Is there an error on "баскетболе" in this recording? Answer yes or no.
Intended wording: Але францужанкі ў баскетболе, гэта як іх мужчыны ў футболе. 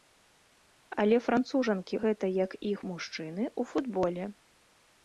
yes